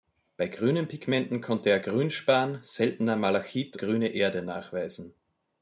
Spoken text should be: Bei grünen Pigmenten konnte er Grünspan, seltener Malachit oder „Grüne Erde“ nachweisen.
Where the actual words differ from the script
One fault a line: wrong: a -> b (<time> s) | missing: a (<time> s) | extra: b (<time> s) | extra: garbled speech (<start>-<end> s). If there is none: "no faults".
missing: oder (3.8 s)